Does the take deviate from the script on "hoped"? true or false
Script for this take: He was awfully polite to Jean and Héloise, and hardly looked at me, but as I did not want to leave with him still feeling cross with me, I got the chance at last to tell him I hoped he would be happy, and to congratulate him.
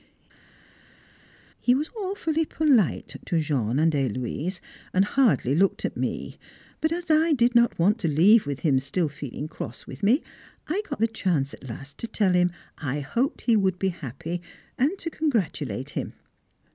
false